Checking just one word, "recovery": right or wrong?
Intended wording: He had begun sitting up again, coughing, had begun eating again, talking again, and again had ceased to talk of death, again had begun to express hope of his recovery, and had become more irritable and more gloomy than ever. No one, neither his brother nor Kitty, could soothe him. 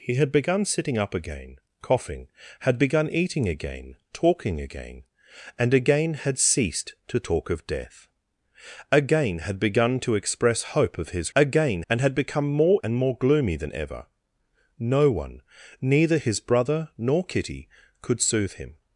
wrong